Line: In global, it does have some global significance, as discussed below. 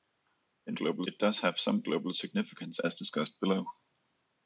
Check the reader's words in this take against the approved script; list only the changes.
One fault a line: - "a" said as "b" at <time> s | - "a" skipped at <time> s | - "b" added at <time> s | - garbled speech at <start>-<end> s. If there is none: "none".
none